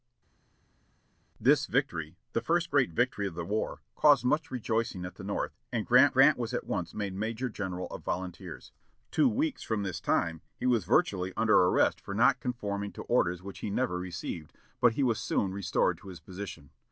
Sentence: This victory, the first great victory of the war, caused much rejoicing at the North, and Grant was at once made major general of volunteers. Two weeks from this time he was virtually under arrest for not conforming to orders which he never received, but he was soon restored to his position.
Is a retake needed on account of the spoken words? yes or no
yes